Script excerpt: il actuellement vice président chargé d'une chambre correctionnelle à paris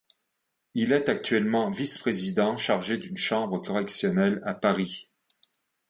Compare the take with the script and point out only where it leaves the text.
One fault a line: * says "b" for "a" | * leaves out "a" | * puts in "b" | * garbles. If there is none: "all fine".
* puts in "est"